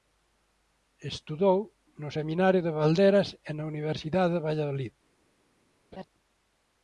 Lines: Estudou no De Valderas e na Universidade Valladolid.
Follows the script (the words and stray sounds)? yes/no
no